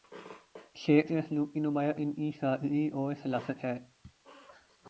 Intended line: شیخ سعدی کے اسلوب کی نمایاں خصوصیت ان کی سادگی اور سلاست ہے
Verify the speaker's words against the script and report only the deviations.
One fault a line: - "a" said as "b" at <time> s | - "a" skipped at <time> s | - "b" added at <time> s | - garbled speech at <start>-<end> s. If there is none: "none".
- "سعدی" skipped at 1.1 s
- "خصوصیت" skipped at 1.9 s